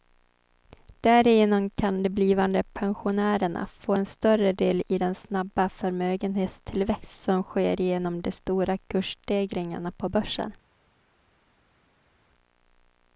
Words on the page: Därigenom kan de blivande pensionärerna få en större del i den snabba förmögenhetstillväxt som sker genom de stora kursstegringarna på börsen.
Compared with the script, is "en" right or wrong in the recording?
right